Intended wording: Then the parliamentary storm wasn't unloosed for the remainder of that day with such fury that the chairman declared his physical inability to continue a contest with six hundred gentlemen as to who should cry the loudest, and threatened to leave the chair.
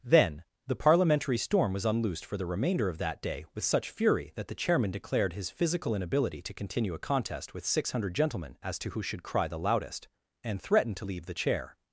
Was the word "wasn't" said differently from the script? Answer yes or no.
yes